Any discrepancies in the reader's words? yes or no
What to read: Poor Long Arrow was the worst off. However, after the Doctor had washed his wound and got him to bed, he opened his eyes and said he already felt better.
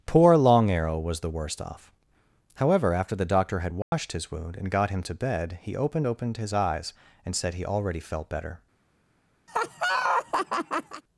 yes